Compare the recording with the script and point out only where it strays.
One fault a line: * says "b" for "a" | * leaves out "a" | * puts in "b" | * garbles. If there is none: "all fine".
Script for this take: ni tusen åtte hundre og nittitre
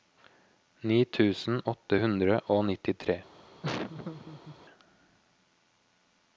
all fine